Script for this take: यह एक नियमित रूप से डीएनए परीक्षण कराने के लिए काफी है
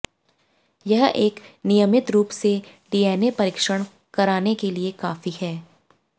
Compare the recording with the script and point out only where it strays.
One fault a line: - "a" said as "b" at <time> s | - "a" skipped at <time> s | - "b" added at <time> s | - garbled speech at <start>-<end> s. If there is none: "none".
none